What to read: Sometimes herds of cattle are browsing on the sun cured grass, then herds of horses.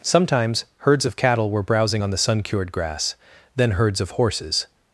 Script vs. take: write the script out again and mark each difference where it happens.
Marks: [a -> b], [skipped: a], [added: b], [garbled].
Sometimes herds of cattle [are -> were] browsing on the sun cured grass, then herds of horses.